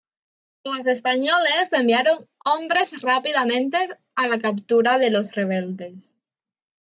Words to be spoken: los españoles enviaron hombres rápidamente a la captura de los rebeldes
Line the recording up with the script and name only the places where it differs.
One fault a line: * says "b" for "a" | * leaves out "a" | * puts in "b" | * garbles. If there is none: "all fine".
all fine